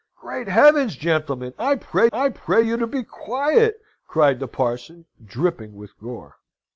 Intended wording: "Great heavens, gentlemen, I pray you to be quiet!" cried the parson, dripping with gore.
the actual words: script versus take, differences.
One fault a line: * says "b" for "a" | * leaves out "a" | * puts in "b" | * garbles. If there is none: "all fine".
* puts in "I pray"